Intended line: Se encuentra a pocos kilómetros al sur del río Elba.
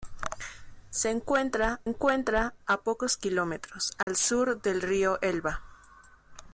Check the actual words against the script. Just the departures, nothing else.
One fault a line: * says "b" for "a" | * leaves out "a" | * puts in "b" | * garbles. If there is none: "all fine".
* puts in "encuentra"